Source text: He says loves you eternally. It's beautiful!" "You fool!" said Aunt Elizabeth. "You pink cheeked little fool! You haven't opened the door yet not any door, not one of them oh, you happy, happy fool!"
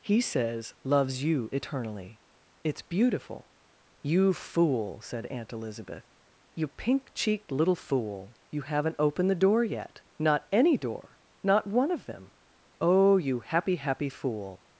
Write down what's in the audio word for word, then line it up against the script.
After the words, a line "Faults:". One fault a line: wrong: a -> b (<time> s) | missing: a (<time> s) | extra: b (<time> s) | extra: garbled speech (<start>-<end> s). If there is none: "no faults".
He says loves you eternally. It's beautiful!" "You fool!" said Aunt Elizabeth. "You pink cheeked little fool! You haven't opened the door yet not any door, not one of them oh, you happy, happy fool!"
Faults:
no faults